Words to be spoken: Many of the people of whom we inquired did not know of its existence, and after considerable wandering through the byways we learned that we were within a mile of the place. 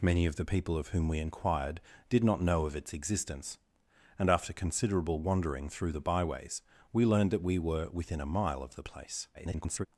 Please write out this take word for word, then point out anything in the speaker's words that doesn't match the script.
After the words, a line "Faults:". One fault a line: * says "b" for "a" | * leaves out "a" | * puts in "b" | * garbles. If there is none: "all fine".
Many of the people of whom we inquired did not know of its existence, and after considerable wandering through the byways we learned that we were within a mile of the place. [garbled]
Faults:
* garbles